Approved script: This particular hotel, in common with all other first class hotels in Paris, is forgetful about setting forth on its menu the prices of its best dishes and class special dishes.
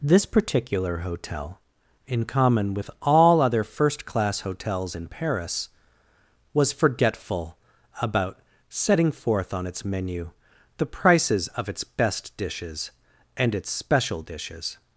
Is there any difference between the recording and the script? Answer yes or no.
yes